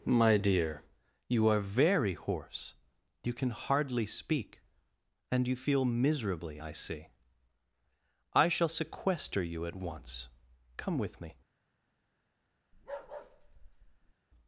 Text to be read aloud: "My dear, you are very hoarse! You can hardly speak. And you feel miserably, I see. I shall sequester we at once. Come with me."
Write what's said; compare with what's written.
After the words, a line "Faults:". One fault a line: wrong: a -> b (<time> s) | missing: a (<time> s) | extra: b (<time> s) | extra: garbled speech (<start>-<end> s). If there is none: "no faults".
"My dear, you are very hoarse! You can hardly speak. And you feel miserably, I see. I shall sequester you at once. Come with me."
Faults:
wrong: we -> you (9.4 s)